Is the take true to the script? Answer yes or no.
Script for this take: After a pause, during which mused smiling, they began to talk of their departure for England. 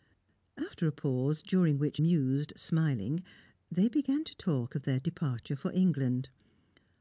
yes